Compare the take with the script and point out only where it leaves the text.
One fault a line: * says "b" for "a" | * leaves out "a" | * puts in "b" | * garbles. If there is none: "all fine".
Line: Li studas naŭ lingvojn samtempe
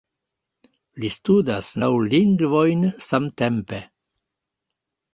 all fine